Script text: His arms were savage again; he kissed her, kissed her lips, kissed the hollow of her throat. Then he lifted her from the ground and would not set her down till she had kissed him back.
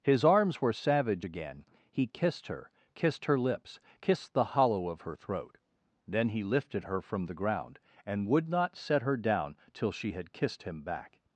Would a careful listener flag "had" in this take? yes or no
no